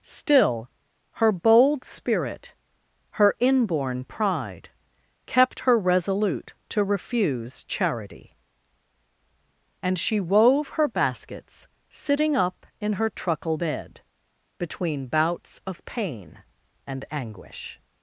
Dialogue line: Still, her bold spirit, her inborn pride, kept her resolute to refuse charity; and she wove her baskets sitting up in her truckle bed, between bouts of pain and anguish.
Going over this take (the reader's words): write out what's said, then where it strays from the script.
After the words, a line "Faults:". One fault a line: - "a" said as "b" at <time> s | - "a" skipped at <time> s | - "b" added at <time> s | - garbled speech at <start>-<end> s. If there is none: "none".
Still, her bold spirit, her inborn pride, kept her resolute to refuse charity; and she wove her baskets sitting up in her truckle bed, between bouts of pain and anguish.
Faults:
none